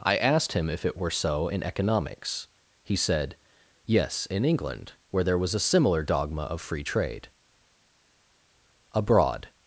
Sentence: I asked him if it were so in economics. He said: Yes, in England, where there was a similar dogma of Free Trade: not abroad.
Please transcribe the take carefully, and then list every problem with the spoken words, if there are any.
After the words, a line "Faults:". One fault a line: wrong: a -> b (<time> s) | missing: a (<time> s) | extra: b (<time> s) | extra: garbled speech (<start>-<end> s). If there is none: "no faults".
I asked him if it were so in economics. He said: Yes, in England, where there was a similar dogma of Free Trade: abroad.
Faults:
missing: not (7.3 s)